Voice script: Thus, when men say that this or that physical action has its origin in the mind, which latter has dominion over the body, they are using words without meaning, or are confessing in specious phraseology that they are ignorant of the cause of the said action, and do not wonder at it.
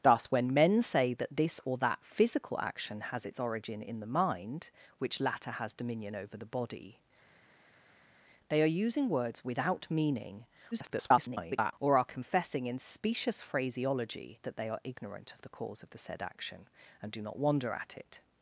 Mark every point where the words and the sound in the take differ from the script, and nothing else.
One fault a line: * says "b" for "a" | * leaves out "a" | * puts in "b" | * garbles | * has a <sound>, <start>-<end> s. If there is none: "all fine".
* garbles